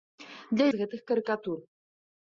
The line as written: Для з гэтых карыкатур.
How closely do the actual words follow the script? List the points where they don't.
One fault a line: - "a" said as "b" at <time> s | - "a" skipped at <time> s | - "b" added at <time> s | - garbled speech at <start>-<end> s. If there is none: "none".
none